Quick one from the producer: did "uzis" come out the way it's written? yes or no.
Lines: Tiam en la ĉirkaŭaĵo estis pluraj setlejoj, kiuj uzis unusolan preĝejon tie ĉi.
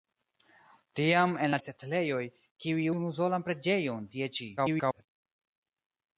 no